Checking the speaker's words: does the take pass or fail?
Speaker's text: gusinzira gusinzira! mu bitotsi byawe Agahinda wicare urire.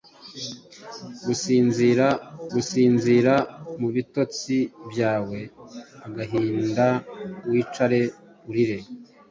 pass